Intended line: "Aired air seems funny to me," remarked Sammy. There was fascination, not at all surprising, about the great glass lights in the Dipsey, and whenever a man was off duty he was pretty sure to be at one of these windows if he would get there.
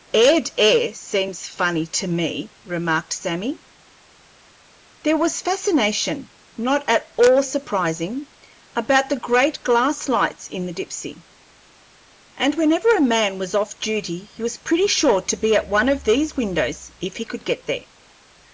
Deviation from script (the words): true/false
true